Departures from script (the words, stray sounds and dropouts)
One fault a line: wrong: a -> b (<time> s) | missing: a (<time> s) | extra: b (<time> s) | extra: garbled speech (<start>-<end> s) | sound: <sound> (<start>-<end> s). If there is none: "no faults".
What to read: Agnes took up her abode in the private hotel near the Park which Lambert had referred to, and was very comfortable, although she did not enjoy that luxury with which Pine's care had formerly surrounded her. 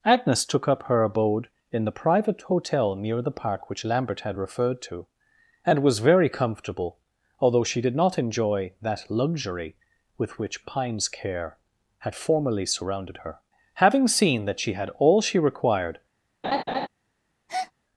extra: Having seen that she had all she required (13.7 s)
sound: laugh (16.4-16.9 s)
sound: breath (17.5-17.7 s)